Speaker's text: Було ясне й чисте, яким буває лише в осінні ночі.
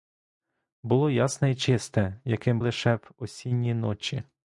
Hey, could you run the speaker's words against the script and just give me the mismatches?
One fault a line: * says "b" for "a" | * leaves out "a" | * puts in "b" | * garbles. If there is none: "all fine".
* leaves out "буває"